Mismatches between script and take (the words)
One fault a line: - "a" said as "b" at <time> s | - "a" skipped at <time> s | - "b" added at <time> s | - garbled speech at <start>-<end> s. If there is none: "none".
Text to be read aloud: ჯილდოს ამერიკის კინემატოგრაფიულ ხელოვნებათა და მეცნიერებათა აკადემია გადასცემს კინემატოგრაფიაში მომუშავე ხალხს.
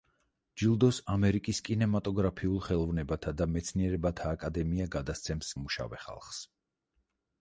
- "კინემატოგრაფიაში" skipped at 5.5 s